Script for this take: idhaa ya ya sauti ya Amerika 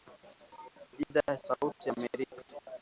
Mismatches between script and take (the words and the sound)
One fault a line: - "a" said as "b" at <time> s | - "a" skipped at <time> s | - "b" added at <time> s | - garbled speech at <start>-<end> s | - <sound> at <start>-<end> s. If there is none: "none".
none